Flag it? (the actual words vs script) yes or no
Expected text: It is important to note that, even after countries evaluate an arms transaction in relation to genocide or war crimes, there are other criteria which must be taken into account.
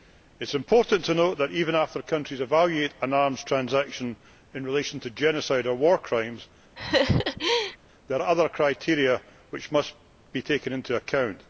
yes